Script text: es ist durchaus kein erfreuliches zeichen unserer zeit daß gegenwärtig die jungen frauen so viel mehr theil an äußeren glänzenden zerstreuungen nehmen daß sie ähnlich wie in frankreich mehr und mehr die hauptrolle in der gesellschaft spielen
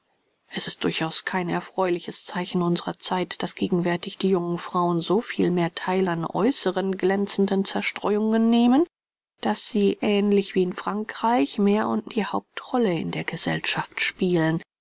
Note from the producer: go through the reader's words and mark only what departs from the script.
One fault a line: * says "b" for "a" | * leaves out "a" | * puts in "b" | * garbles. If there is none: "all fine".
* leaves out "mehr"